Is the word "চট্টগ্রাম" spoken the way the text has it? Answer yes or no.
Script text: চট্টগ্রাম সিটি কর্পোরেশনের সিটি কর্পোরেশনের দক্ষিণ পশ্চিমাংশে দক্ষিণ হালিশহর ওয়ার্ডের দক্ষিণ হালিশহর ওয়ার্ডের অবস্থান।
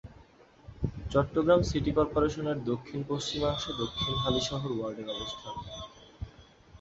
yes